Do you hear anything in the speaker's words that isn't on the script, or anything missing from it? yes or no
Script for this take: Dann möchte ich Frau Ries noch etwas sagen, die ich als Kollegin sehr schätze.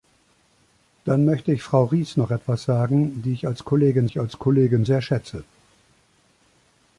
yes